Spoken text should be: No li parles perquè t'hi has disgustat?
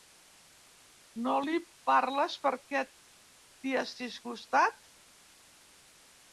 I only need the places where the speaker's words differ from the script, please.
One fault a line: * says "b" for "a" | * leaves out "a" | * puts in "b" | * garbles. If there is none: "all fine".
all fine